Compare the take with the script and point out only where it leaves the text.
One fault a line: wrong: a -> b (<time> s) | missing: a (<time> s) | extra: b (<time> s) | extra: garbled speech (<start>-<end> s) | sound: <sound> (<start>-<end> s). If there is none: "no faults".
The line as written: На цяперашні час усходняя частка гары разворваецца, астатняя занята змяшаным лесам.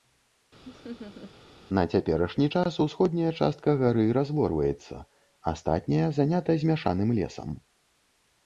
sound: laugh (0.6-1.3 s)